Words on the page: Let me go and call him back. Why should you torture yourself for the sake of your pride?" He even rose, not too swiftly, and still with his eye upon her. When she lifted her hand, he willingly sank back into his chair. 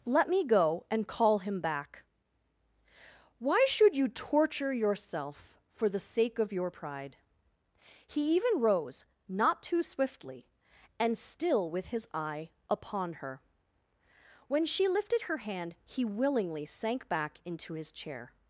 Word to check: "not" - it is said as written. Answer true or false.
true